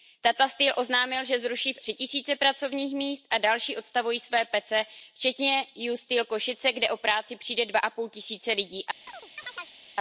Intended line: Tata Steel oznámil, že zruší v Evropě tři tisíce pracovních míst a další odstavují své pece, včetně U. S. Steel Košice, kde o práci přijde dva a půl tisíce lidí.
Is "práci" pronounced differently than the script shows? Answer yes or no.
no